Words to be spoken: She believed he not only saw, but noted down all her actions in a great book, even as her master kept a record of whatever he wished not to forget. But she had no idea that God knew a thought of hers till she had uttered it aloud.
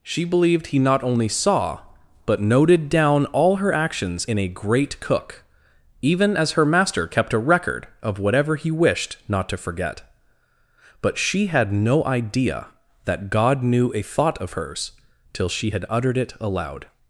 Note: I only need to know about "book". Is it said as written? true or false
false